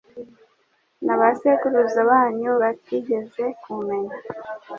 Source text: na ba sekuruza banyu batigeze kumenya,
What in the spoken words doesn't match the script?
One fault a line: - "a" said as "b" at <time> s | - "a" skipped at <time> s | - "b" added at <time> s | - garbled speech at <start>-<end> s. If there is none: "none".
none